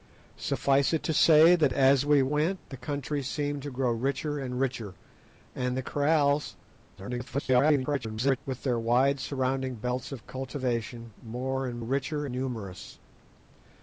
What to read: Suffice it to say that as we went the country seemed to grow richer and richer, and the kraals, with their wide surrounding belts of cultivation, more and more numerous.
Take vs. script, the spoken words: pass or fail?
fail